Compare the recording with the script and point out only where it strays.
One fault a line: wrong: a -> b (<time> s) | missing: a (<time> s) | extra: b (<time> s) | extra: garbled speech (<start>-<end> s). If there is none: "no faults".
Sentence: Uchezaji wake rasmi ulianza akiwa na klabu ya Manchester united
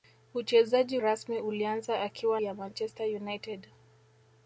missing: wake (1.0 s)
missing: na klabu (2.4 s)